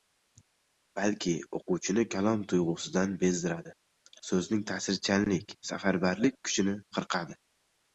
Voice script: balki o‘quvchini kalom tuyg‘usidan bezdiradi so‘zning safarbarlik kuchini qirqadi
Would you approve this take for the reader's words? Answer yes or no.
no